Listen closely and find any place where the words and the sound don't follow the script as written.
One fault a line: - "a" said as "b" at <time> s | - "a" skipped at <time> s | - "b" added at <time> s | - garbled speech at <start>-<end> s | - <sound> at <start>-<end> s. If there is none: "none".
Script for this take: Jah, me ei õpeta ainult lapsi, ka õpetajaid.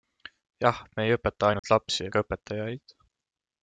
- dropout at 1.6-1.6 s